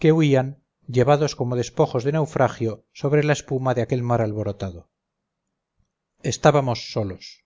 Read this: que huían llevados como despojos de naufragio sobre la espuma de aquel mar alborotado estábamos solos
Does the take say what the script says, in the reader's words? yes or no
yes